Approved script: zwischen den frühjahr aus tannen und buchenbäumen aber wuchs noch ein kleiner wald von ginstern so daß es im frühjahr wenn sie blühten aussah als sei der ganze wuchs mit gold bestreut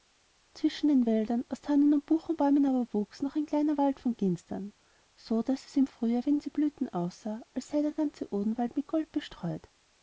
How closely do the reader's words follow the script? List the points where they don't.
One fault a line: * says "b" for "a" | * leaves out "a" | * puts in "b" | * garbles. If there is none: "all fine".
* says "wäldern" for "frühjahr"
* says "odenwald" for "wuchs"